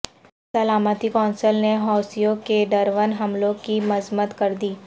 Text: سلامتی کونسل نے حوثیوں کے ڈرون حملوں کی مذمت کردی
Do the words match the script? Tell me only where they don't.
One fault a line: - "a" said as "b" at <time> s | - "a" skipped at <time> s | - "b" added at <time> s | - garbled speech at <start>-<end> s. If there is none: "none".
none